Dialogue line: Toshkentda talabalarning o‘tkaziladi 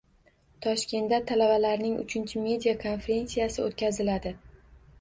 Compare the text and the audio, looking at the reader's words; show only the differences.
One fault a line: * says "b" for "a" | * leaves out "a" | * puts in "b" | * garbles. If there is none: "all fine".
* puts in "uchinchi media konferensiyasi"